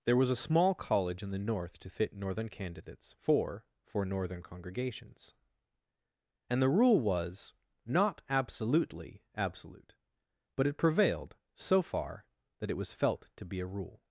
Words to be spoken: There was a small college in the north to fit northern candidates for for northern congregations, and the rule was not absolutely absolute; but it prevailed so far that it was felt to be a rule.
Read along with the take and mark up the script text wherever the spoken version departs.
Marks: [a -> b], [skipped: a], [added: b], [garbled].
There was a small college in the north to fit northern candidates for for northern congregations, and the rule was not absolutely absolute; but it prevailed so far that it was felt to be a rule.